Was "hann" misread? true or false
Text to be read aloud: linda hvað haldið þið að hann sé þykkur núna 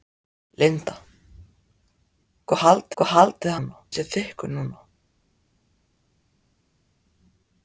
true